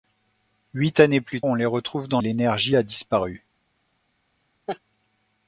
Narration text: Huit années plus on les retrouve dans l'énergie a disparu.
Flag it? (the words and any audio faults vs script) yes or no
yes